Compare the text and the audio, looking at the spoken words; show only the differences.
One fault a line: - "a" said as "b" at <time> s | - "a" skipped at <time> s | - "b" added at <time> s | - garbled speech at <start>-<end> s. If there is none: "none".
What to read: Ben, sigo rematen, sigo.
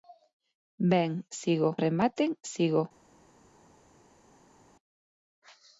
none